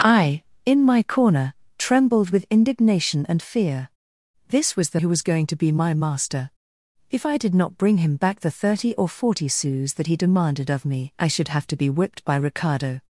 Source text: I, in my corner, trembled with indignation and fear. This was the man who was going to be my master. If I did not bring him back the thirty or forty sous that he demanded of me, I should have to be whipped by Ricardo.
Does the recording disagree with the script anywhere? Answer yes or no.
yes